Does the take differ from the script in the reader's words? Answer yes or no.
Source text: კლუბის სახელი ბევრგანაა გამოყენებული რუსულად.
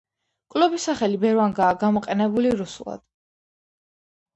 no